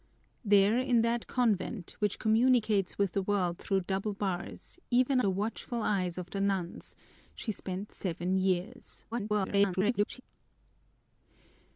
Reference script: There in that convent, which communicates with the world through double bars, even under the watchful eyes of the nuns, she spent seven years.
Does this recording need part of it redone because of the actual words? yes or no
yes